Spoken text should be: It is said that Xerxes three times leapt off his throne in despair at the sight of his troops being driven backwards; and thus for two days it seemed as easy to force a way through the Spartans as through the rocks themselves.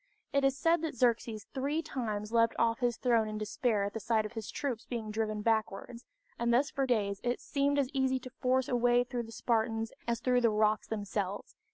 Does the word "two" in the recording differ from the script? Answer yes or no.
yes